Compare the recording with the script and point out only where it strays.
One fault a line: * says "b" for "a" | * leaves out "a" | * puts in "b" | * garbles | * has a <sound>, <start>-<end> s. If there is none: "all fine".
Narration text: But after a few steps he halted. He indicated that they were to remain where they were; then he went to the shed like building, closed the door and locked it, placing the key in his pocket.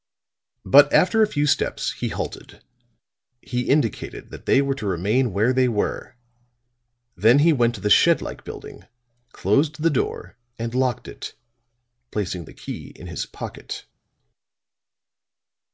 all fine